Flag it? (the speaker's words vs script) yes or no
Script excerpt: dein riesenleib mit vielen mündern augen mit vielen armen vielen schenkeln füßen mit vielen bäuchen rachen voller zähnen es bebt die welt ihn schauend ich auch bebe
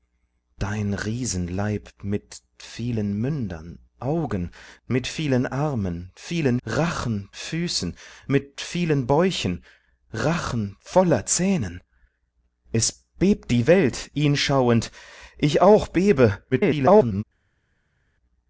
yes